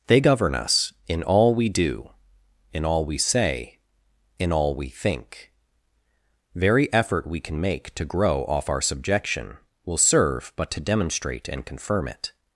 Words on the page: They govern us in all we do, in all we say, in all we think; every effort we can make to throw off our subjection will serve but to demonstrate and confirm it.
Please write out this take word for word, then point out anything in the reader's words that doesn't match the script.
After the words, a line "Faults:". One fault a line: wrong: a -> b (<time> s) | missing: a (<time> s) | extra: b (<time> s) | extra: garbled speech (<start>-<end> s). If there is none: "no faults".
They govern us in all we do, in all we say, in all we think; very effort we can make to grow off our subjection will serve but to demonstrate and confirm it.
Faults:
wrong: every -> very (6.5 s)
wrong: throw -> grow (8.0 s)